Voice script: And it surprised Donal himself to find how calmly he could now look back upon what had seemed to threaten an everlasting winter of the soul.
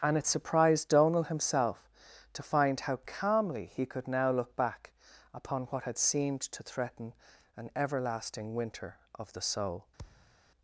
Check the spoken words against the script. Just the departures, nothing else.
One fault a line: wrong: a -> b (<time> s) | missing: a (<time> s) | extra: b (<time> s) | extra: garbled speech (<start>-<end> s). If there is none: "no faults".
no faults